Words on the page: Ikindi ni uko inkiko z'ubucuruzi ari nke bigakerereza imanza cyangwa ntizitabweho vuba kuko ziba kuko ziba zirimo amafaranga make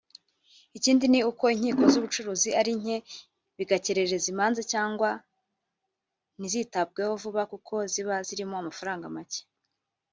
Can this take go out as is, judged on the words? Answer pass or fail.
fail